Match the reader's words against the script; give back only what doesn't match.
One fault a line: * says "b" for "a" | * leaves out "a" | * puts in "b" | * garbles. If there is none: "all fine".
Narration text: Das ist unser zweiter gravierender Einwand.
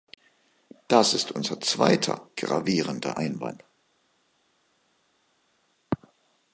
all fine